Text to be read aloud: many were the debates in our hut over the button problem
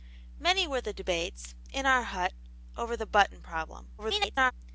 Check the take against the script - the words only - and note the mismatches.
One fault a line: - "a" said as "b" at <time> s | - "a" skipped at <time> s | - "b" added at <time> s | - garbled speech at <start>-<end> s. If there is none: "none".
- garbled speech at 4.0-4.5 s